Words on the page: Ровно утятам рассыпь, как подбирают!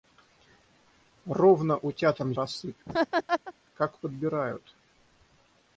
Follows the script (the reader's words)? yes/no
yes